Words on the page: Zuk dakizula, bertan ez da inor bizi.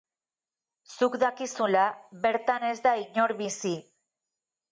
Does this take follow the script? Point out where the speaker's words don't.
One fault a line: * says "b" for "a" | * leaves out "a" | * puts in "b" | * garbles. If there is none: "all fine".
all fine